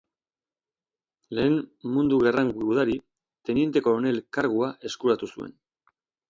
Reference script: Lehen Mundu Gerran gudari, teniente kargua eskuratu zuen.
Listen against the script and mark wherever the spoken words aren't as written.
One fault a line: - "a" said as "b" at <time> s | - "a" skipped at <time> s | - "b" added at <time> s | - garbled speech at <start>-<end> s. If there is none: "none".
- "koronel" added at 3.9 s